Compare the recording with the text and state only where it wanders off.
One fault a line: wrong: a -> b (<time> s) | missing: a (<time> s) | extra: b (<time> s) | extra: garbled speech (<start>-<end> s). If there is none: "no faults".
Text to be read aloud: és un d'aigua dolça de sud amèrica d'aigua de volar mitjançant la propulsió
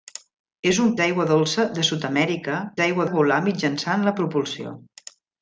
no faults